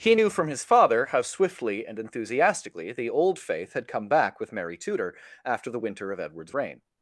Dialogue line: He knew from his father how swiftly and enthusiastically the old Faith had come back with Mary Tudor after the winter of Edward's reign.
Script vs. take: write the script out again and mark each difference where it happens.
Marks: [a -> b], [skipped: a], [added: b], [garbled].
He knew from his father how swiftly and enthusiastically the old Faith had come back with Mary Tudor after the winter of Edward's reign.